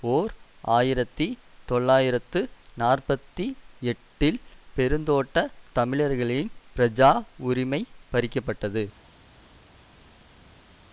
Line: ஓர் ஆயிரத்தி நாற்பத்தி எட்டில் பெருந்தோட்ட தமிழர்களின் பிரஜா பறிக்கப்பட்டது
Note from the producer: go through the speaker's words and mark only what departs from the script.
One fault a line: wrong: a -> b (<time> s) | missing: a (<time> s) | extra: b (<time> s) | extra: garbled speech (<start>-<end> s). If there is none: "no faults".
extra: தொள்ளாயிரத்து (1.7 s)
extra: உரிமை (7.5 s)